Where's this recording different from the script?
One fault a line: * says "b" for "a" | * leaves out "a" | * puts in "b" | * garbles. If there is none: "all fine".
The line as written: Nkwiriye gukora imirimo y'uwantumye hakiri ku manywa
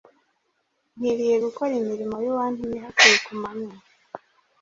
all fine